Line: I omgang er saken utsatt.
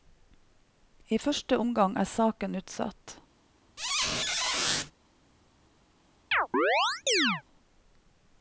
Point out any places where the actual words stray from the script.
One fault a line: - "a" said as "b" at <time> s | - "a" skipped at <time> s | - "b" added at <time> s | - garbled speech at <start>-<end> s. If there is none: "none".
- "første" added at 1.2 s